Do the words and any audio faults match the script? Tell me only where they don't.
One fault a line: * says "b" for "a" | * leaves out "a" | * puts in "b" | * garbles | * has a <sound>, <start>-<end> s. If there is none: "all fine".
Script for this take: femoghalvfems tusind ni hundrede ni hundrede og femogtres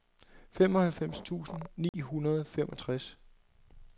* has a dropout, 1.9-1.9 s
* leaves out "ni hundrede"